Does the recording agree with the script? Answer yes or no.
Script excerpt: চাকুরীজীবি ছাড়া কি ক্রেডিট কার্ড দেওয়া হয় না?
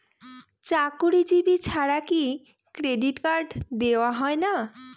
yes